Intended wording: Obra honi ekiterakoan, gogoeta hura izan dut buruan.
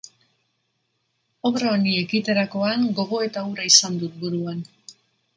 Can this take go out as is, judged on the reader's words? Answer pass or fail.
pass